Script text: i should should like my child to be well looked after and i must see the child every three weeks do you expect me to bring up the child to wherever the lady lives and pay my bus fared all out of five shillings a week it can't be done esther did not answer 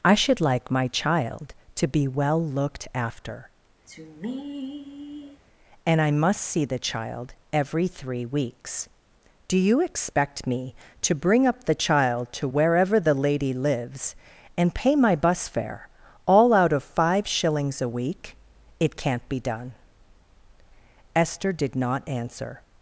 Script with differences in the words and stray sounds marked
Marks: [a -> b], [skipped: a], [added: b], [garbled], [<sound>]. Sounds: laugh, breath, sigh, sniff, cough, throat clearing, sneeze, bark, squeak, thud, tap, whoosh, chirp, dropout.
i should [skipped: should] like my child to be well looked after [sigh] and i must see the child every three weeks do you expect me to bring up the child to wherever the lady lives and pay my bus [fared -> fare] all out of five shillings a week it can't be done esther did not answer